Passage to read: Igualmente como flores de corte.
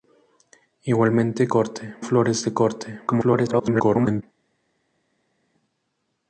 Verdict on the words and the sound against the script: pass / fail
fail